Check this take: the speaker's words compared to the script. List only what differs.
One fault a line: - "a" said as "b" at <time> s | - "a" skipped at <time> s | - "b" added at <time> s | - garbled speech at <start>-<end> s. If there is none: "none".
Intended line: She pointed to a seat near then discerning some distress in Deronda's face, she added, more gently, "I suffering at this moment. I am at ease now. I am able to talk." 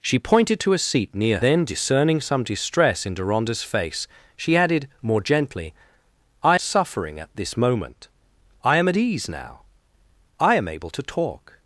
none